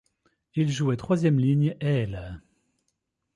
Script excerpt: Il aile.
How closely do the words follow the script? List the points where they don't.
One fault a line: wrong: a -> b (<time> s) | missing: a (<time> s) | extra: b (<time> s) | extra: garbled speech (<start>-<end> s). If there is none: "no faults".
extra: jouait troisième ligne (0.7 s)